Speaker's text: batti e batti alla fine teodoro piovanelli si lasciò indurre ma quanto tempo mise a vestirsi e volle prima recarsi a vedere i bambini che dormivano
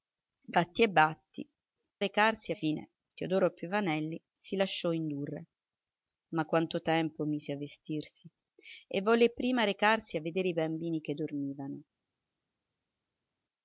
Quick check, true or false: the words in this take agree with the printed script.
false